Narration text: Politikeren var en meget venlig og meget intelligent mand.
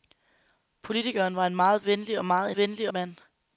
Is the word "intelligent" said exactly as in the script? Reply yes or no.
no